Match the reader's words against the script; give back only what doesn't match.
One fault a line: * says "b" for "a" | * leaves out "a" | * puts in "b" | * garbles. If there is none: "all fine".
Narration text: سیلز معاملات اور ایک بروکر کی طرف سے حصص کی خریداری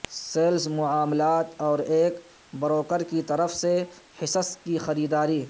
all fine